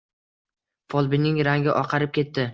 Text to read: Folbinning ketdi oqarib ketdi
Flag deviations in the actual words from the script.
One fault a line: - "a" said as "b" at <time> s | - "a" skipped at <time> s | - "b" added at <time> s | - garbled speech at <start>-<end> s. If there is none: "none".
- "ketdi" said as "rangi" at 1.5 s